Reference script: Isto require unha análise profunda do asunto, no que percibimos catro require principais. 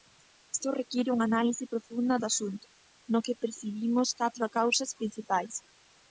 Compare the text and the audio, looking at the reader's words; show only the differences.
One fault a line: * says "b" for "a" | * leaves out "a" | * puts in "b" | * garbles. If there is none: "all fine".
* says "causas" for "require"